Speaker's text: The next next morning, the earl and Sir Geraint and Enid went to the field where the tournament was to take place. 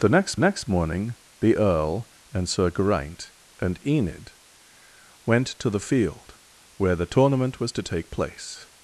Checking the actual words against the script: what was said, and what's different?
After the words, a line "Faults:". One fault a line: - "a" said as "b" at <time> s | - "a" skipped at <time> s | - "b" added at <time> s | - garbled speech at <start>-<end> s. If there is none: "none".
The next next morning, the earl and Sir Geraint and Enid went to the field where the tournament was to take place.
Faults:
none